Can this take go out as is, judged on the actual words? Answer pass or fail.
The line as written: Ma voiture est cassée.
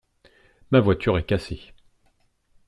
pass